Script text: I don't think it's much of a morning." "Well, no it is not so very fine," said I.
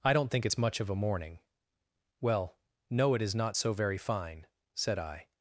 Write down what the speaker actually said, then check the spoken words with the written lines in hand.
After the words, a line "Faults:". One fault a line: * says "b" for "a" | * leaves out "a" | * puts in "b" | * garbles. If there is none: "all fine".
I don't think it's much of a morning." "Well, no it is not so very fine," said I.
Faults:
all fine